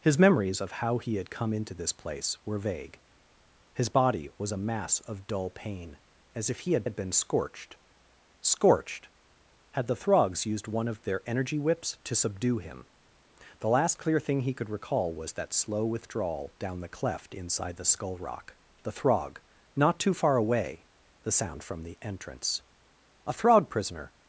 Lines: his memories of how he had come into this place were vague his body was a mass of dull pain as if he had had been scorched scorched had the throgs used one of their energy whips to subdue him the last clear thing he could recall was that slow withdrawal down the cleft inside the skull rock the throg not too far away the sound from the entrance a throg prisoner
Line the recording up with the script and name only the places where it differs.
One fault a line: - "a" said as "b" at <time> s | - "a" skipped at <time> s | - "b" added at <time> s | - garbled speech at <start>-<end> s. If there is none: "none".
none